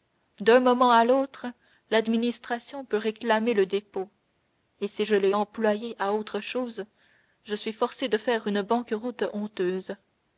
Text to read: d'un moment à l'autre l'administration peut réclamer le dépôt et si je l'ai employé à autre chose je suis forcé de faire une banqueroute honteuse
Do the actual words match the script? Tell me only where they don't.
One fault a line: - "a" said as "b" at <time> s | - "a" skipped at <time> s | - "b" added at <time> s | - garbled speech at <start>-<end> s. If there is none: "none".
none